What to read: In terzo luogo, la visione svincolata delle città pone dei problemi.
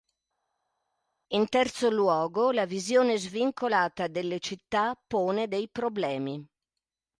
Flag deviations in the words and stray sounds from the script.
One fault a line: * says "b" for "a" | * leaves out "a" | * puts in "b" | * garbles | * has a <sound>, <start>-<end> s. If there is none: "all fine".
all fine